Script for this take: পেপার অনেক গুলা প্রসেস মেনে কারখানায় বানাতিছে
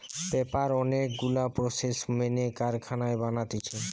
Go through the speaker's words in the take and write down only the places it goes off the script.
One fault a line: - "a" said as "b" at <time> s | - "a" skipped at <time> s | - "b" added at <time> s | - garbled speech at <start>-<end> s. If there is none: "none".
none